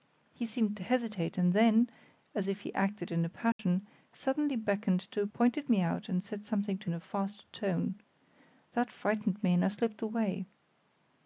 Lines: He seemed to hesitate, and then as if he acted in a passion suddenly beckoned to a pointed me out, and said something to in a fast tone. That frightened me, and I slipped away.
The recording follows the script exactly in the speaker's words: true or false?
true